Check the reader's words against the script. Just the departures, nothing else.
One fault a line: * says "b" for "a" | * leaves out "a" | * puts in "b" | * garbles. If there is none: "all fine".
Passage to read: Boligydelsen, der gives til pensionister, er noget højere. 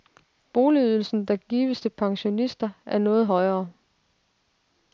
all fine